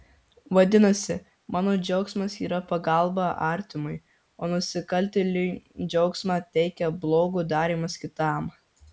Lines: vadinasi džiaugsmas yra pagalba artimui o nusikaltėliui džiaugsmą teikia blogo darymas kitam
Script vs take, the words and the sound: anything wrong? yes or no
yes